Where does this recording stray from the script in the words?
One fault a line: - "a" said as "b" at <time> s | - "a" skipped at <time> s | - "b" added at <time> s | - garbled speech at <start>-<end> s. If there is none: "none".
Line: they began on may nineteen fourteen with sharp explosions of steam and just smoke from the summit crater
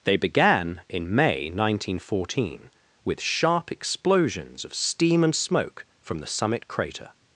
- "on" said as "in" at 0.9 s
- "just" skipped at 5.3 s